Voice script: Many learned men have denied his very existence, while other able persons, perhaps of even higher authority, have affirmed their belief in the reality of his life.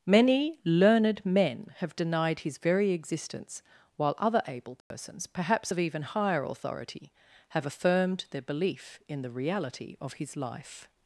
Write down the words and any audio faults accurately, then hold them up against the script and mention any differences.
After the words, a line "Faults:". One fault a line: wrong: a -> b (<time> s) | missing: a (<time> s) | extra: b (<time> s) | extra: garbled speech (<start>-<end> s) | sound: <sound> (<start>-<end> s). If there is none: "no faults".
Many learned men have denied his very existence, while other able persons, perhaps of even higher authority, have affirmed their belief in the reality of his life.
Faults:
sound: dropout (4.8-4.9 s)